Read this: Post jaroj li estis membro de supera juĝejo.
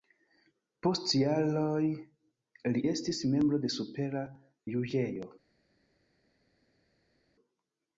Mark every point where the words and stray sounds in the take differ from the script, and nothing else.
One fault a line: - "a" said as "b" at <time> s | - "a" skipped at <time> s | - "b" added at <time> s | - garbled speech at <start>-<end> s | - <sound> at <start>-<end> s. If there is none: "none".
none